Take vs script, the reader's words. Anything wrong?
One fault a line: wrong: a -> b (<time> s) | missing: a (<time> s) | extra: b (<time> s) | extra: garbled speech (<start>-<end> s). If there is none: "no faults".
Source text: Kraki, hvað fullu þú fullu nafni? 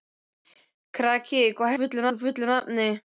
no faults